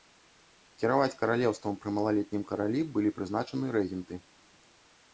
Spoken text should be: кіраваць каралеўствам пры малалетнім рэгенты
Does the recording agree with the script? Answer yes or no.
no